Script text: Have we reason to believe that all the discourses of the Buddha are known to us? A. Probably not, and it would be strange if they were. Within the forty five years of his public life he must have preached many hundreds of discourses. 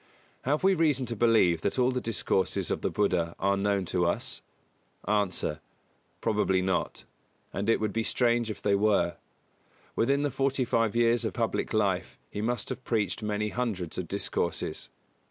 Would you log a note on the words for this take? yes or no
yes